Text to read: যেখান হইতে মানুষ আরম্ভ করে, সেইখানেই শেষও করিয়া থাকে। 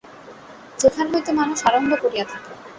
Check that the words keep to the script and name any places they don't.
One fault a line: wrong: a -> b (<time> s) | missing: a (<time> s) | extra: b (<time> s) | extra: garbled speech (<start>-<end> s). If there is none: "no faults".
missing: করে সেইখানেই শেষও (1.9 s)